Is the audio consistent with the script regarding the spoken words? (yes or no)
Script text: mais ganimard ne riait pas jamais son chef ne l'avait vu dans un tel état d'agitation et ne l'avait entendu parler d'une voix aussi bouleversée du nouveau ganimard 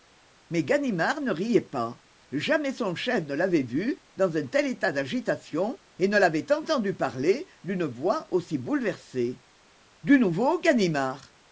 yes